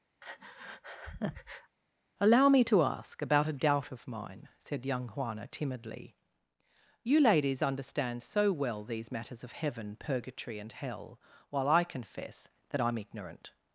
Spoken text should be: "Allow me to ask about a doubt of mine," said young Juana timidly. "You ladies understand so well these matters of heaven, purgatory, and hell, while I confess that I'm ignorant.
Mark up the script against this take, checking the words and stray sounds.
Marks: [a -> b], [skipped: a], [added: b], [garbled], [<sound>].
[breath] "Allow me to ask about a doubt of mine," said young Juana timidly. "You ladies understand so well these matters of heaven, purgatory, and hell, while I confess that I'm ignorant.